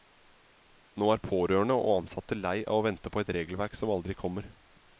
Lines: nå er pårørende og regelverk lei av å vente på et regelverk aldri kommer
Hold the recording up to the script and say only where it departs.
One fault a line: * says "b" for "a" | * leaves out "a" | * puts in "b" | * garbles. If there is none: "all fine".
* says "ansatte" for "regelverk"
* puts in "som"